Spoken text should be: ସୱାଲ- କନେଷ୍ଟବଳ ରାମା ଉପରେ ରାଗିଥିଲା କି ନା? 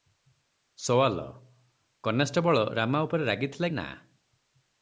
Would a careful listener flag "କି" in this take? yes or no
yes